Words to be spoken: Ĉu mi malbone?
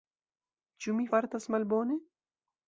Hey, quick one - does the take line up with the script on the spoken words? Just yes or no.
no